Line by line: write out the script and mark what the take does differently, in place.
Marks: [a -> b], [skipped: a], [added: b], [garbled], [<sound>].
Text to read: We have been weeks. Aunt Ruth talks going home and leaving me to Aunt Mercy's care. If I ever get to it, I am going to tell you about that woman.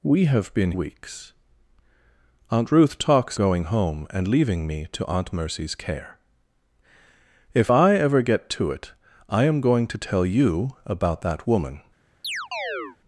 We have been weeks. Aunt Ruth talks going home and leaving me to Aunt Mercy's care. If I ever get to it, I am going to tell you about that woman. [chirp]